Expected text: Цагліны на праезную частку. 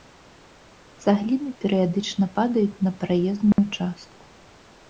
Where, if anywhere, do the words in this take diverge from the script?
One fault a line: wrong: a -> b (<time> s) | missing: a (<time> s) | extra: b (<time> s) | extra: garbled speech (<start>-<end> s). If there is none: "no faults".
extra: перыядычна падаюць (1.6 s)